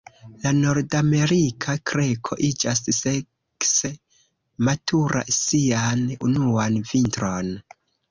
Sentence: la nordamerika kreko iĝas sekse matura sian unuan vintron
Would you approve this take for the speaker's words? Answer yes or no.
yes